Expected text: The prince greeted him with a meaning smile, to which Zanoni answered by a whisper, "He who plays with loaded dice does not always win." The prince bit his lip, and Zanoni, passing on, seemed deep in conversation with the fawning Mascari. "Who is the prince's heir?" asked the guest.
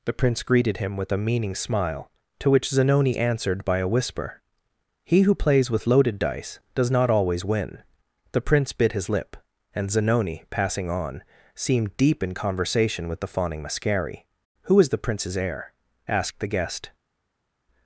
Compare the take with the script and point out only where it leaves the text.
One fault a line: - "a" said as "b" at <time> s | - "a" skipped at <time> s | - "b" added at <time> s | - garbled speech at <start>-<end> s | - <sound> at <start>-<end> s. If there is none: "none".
none